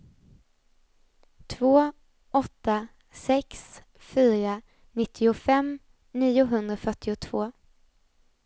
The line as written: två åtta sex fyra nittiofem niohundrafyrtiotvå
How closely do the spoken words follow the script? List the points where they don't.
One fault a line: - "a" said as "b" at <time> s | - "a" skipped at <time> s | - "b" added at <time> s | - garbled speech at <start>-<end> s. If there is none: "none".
none